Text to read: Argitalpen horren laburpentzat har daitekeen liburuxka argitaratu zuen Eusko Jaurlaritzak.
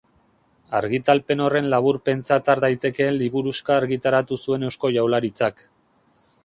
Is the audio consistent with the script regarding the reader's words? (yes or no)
yes